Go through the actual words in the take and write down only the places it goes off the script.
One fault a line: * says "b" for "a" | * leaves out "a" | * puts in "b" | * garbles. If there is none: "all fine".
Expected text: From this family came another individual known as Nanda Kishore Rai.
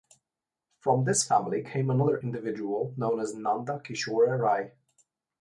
all fine